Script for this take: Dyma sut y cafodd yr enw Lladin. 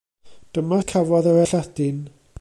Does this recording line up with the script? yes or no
no